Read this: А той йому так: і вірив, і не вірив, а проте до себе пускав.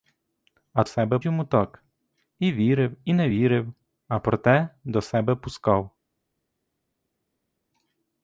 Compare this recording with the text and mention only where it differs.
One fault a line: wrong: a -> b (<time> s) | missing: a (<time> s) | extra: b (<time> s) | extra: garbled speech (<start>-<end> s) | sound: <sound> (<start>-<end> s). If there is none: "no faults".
wrong: той -> себе (0.8 s)